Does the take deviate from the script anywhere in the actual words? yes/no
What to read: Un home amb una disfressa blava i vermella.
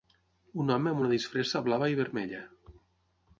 no